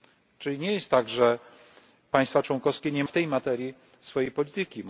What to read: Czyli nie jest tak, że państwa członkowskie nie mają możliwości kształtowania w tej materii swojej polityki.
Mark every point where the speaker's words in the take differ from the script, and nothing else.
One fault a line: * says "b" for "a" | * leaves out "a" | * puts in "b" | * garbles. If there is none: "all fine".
* leaves out "mają możliwości kształtowania"